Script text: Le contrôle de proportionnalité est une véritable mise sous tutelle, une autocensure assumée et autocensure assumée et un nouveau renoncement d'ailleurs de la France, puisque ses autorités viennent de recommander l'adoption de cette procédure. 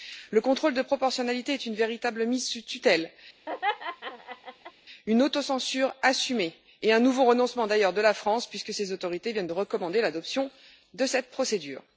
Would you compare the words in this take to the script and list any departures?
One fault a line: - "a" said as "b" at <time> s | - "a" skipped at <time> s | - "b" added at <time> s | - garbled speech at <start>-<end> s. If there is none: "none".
- "autocensure assumée et" skipped at 6.9 s